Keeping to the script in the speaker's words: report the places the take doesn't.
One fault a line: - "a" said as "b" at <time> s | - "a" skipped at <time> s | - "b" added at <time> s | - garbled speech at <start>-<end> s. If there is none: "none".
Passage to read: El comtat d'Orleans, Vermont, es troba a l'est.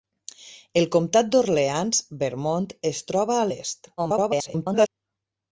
- garbled speech at 4.0-4.9 s